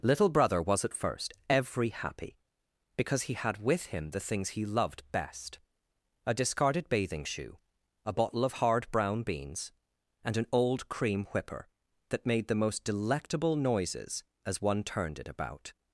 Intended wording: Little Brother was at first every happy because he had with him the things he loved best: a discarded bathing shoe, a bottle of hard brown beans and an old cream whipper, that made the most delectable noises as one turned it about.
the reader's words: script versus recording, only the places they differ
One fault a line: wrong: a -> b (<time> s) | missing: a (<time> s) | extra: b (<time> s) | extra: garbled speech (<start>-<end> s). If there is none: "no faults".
no faults